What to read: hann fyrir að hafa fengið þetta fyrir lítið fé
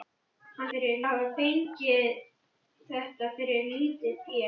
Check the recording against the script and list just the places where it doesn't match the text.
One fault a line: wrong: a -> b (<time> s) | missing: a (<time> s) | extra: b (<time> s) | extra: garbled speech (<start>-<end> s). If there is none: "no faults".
no faults